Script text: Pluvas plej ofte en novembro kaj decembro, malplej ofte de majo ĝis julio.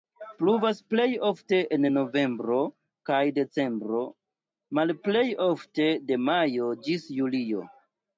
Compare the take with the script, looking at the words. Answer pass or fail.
pass